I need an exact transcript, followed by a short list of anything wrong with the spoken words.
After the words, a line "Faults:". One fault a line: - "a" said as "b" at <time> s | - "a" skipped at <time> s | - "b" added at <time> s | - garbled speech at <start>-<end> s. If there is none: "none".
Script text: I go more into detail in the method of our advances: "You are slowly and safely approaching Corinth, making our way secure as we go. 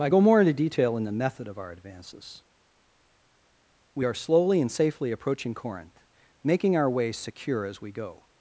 I go more into detail in the method of our advances: "We are slowly and safely approaching Corinth, making our way secure as we go.
Faults:
- "You" said as "We" at 3.9 s